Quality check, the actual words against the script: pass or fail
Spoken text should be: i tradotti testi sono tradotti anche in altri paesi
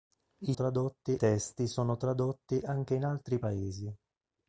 pass